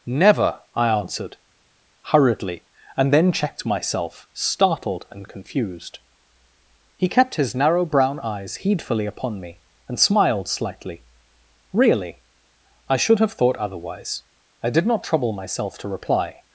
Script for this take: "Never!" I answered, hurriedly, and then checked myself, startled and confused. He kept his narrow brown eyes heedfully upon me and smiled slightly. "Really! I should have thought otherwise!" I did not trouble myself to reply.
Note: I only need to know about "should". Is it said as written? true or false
true